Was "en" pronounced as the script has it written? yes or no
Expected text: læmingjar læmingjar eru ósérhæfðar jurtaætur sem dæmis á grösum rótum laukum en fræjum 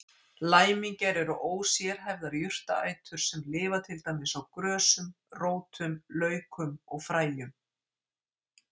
no